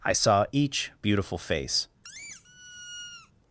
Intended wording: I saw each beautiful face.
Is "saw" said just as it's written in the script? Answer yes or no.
yes